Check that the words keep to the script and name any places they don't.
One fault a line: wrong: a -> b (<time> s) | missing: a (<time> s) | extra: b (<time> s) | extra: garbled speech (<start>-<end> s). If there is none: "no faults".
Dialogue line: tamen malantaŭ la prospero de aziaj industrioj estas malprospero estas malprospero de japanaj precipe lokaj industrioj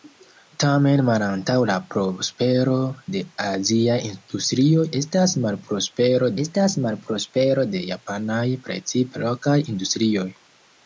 no faults